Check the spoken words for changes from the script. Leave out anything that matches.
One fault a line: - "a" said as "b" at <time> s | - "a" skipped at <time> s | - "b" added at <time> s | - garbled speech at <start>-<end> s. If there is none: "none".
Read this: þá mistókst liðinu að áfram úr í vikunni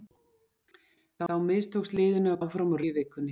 none